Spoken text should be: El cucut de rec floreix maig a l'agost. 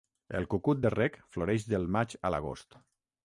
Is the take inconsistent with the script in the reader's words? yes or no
yes